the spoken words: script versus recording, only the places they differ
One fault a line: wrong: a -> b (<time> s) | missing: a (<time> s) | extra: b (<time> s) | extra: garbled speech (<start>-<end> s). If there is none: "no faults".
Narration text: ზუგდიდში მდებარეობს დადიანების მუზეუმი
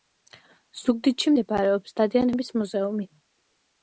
no faults